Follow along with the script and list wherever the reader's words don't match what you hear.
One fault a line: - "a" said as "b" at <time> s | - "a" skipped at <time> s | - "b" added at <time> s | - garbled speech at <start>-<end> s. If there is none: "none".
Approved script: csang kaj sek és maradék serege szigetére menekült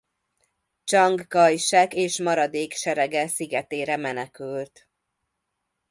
none